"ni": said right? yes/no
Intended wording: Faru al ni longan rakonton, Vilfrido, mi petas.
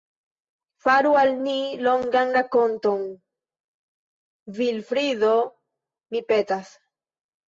yes